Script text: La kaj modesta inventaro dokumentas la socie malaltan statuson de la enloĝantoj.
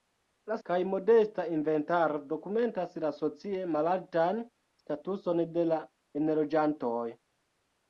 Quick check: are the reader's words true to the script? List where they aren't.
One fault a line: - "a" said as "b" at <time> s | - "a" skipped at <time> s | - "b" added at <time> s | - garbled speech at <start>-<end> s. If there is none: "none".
none